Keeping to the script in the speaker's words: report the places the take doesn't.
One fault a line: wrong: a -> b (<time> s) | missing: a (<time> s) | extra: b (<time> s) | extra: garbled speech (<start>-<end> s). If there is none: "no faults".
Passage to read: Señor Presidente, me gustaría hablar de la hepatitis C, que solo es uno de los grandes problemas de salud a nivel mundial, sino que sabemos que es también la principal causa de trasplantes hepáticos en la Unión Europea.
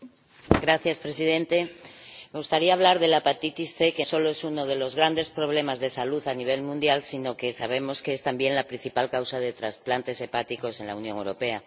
no faults